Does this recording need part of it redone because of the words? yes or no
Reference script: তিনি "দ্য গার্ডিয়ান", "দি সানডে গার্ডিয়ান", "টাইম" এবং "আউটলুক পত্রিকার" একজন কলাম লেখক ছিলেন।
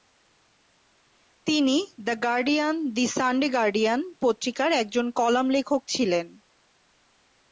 yes